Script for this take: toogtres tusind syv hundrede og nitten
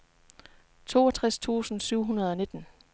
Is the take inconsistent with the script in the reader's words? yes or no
no